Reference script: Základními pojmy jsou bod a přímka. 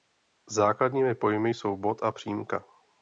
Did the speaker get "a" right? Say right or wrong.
right